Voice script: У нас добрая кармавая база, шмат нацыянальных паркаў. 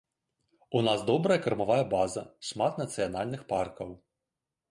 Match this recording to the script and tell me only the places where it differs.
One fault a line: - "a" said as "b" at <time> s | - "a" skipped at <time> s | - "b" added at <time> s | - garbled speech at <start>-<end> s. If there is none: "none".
none